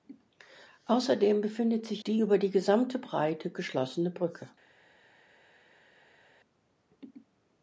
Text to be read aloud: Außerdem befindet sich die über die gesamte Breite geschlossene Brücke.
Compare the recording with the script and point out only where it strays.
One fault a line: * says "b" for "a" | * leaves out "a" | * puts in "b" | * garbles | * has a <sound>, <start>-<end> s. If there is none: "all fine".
all fine